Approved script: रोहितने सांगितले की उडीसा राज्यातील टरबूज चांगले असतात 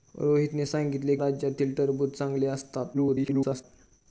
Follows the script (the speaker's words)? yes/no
no